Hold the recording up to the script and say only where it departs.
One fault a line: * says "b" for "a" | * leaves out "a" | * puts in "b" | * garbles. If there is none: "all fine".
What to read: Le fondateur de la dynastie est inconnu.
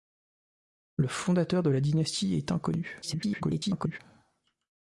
* garbles